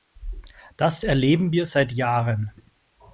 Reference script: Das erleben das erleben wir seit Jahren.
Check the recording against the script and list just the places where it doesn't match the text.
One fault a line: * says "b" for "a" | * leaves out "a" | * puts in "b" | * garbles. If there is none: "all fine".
* leaves out "das erleben"